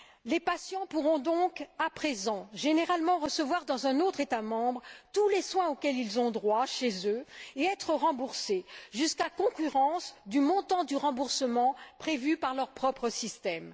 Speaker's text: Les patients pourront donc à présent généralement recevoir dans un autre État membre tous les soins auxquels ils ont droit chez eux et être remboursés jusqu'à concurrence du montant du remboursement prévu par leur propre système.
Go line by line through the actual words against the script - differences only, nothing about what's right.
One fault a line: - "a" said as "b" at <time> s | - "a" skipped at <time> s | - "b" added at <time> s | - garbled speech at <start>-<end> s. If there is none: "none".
none